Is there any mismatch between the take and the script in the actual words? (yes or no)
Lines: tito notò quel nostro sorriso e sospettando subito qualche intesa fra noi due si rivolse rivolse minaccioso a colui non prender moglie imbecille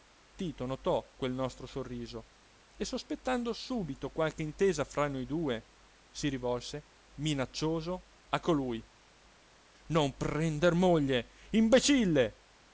yes